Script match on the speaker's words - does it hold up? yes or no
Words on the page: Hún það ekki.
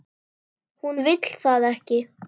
no